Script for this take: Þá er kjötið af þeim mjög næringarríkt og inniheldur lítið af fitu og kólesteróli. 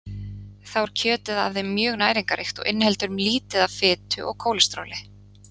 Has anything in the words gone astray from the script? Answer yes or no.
no